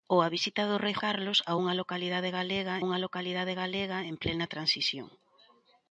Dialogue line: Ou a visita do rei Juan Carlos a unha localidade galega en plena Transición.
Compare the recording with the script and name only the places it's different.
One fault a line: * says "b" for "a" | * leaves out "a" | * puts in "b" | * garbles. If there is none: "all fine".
* leaves out "Juan"
* puts in "unha localidade galega"